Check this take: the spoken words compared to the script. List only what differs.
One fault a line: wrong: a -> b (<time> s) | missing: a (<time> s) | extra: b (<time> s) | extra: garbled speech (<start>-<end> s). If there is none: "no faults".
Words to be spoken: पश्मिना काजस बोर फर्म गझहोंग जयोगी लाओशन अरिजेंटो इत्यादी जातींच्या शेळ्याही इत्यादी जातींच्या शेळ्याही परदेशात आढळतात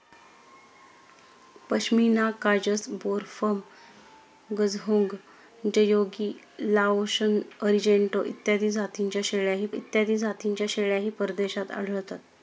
no faults